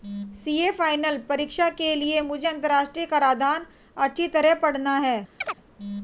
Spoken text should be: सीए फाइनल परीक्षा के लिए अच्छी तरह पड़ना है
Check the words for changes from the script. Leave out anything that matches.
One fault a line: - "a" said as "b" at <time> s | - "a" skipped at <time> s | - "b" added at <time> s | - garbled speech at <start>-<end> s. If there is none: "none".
- "मुझे अंतरराष्ट्रीय कराधान" added at 2.2 s